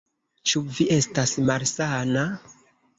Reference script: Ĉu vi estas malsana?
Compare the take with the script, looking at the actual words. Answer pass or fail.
pass